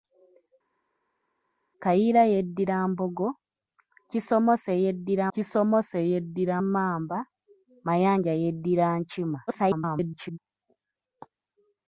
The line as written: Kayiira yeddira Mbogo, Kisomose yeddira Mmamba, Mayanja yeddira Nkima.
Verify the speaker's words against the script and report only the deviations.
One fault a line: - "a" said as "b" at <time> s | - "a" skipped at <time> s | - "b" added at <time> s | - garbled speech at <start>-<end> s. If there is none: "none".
- "Kisomose yeddira" added at 5.3 s
- garbled speech at 9.5-10.4 s